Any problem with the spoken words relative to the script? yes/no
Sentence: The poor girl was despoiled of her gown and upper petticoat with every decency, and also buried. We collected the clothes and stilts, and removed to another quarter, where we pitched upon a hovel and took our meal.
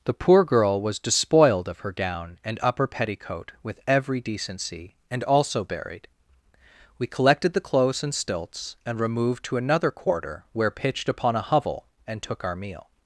yes